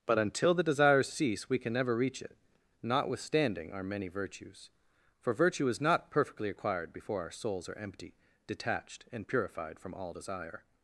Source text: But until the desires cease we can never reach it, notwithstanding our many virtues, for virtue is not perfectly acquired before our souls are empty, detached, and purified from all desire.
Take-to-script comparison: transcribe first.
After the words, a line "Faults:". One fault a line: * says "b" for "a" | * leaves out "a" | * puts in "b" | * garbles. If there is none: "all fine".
But until the desires cease we can never reach it, notwithstanding our many virtues, for virtue is not perfectly acquired before our souls are empty, detached, and purified from all desire.
Faults:
all fine